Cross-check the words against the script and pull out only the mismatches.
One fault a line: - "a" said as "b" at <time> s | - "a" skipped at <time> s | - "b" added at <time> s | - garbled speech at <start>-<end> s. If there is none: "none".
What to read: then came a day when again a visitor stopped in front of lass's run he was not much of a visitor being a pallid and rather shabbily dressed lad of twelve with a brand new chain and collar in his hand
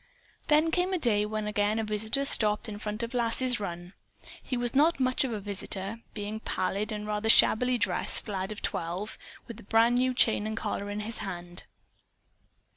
none